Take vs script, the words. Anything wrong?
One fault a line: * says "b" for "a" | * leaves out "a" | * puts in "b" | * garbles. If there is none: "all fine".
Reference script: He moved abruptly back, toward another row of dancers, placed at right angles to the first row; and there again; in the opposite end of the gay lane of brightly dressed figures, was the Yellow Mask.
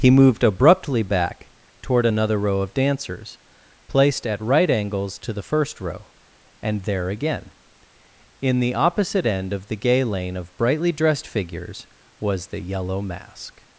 all fine